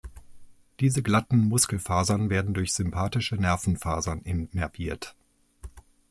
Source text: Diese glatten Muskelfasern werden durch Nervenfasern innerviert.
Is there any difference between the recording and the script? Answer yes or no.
yes